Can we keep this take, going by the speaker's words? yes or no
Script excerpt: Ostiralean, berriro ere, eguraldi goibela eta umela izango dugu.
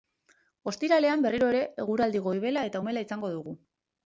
yes